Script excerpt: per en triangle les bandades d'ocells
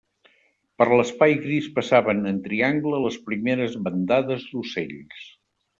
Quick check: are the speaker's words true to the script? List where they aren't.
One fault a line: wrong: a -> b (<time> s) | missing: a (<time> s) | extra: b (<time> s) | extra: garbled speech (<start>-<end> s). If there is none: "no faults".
extra: l'espai gris passaven (0.9 s)
extra: primeres (3.3 s)